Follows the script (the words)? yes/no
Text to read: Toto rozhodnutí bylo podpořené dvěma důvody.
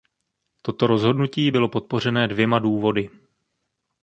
yes